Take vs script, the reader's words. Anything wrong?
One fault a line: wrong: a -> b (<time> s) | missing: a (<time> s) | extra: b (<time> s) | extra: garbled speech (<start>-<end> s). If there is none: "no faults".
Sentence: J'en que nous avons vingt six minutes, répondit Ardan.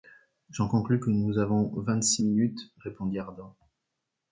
extra: conclus (0.7 s)